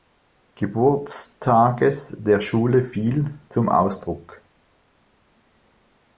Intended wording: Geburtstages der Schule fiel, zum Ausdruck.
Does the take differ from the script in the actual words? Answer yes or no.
no